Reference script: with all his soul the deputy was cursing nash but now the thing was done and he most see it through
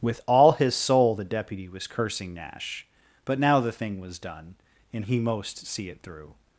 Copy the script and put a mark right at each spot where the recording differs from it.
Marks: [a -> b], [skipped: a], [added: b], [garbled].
with all his soul the deputy was cursing nash but now the thing was done and he most see it through